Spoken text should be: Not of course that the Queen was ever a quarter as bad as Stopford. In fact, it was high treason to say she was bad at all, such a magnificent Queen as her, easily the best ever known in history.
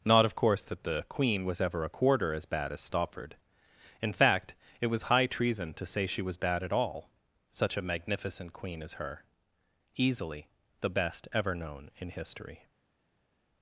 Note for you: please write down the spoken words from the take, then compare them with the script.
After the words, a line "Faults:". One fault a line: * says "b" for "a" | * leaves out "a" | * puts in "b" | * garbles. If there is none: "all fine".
Not of course that the Queen was ever a quarter as bad as Stopford. In fact, it was high treason to say she was bad at all, such a magnificent Queen as her, easily the best ever known in history.
Faults:
all fine